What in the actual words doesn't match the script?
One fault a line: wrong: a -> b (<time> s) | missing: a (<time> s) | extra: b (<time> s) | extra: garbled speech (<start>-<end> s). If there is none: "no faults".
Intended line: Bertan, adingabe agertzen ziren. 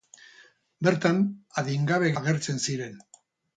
no faults